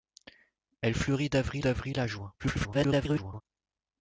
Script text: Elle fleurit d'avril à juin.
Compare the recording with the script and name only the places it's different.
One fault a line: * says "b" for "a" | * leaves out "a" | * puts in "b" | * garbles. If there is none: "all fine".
* puts in "d'avril"
* garbles